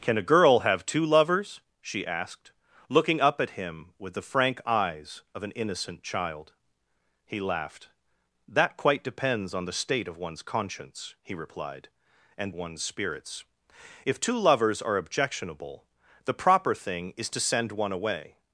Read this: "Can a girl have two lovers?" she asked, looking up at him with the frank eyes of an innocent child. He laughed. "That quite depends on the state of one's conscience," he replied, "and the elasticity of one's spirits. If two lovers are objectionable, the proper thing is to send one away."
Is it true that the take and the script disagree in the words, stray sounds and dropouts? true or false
true